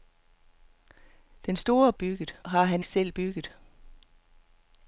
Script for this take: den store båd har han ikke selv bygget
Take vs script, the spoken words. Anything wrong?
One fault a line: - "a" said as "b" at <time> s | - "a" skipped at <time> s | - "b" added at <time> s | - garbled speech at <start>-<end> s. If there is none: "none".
- "båd" said as "bygget" at 1.9 s
- "ikke" skipped at 2.8 s